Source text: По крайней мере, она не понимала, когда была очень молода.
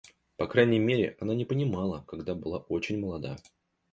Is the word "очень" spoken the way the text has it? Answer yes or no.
yes